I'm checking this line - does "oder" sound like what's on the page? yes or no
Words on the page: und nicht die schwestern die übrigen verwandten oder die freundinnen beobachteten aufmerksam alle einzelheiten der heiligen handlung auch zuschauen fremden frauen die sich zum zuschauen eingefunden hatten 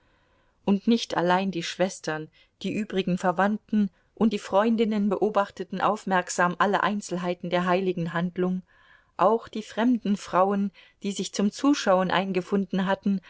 no